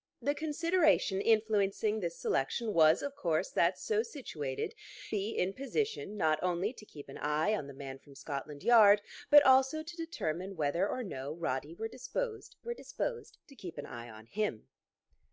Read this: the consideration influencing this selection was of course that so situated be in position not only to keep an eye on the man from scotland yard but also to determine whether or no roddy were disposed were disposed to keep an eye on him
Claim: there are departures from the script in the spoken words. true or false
false